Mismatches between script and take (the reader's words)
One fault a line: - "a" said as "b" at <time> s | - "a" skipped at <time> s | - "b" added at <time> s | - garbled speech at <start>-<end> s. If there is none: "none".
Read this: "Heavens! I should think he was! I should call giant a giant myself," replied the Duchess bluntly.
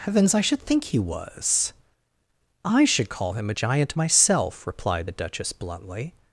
- "giant" said as "him" at 3.3 s